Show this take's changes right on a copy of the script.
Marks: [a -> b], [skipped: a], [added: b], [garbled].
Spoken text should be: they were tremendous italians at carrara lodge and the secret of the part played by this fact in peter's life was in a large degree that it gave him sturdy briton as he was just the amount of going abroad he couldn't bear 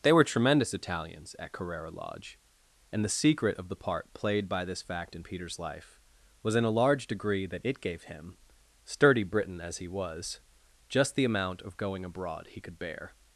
they were tremendous italians at carrara lodge and the secret of the part played by this fact in peter's life was in a large degree that it gave him sturdy briton as he was just the amount of going abroad he [couldn't -> could] bear